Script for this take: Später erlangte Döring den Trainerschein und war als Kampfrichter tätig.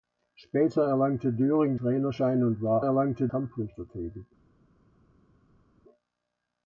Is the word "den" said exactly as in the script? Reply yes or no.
no